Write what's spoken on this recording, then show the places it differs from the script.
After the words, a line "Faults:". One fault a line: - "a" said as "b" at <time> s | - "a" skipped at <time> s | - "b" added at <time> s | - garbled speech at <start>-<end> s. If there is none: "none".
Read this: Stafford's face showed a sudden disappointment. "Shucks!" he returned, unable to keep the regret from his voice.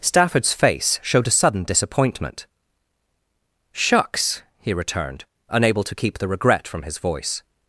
Stafford's face showed a sudden disappointment. "Shucks!" he returned, unable to keep the regret from his voice.
Faults:
none